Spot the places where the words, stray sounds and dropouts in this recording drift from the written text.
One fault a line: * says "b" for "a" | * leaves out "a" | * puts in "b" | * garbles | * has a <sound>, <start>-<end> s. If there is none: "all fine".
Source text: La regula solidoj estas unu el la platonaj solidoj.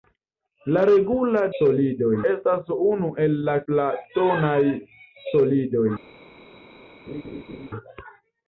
* has a laugh, 7.1-7.7 s